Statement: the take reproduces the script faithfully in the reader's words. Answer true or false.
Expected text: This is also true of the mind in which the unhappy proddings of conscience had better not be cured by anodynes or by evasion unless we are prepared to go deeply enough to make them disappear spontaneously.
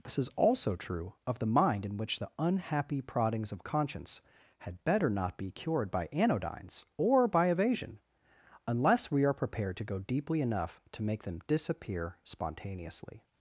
true